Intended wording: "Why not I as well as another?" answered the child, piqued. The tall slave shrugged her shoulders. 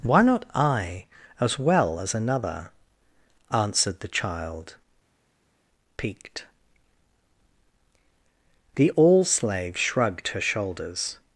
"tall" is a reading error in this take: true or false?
true